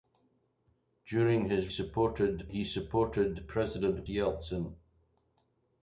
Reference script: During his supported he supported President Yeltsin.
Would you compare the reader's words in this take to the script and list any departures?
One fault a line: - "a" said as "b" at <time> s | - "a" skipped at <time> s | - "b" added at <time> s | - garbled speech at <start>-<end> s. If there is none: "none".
none